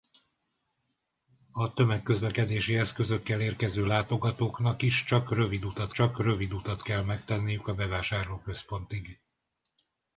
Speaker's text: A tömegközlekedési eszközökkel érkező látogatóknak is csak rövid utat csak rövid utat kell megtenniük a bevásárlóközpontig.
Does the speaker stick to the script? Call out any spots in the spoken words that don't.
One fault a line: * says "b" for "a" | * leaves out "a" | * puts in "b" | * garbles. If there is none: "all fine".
all fine